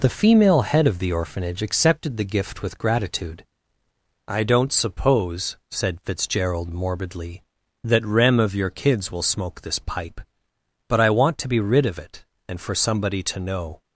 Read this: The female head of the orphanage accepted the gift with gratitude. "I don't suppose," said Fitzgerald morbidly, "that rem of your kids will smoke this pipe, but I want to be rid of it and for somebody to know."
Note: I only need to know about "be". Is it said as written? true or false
true